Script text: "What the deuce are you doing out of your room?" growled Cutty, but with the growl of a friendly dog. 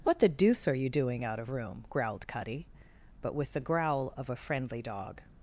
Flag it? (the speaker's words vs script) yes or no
yes